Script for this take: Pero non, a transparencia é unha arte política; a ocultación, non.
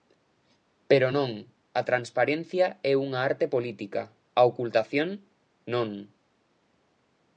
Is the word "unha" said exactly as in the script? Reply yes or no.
yes